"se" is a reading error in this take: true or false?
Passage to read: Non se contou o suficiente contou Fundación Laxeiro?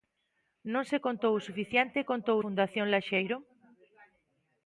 false